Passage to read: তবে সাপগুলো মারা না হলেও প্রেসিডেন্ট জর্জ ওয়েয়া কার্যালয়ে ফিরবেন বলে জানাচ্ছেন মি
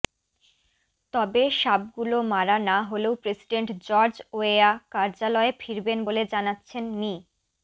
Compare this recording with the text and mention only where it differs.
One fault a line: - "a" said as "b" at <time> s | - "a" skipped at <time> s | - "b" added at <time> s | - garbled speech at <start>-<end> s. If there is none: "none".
none